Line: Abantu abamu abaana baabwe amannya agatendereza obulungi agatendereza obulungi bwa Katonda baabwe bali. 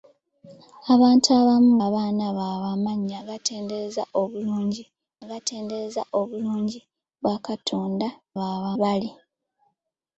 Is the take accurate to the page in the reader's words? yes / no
yes